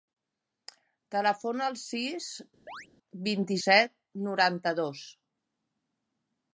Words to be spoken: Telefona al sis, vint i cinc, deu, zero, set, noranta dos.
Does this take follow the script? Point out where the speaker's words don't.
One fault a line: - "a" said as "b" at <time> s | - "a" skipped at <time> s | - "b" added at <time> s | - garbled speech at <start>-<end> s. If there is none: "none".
- "cinc deu zero" skipped at 3.6 s